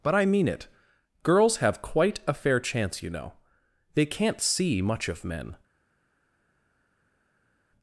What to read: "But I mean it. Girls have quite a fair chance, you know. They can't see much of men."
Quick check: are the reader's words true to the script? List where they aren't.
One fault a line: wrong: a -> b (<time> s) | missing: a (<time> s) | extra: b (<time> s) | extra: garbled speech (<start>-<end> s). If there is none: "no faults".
no faults